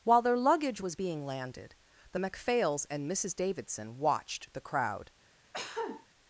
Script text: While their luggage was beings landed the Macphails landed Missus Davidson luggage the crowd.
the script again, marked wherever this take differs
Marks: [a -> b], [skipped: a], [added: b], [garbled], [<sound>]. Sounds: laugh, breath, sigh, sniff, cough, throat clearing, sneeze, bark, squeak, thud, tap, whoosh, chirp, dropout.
While their luggage was [beings -> being] landed the Macphails [landed -> and] Missus Davidson [luggage -> watched] the crowd. [cough]